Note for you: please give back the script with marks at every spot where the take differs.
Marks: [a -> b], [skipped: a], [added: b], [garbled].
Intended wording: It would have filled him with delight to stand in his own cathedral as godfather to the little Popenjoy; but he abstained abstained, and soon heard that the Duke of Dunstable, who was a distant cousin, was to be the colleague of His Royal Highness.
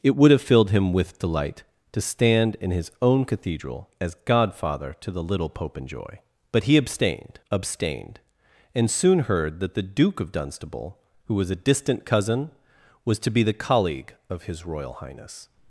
It would have filled him with delight to stand in his own cathedral as godfather to the little Popenjoy; but he abstained abstained, and soon heard that the Duke of Dunstable, who was a distant cousin, was to be the colleague of His Royal Highness.